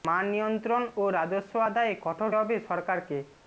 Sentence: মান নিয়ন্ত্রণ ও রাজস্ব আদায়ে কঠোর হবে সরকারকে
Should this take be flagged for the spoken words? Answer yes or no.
no